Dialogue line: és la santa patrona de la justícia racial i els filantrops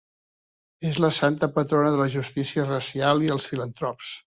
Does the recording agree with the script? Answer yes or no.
yes